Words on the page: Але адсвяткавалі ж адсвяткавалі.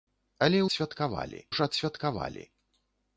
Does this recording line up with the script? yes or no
yes